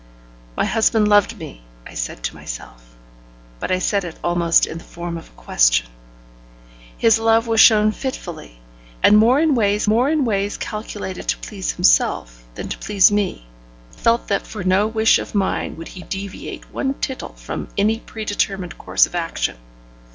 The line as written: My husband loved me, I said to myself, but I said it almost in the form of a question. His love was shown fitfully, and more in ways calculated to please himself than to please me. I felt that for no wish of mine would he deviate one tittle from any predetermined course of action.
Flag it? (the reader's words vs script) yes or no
yes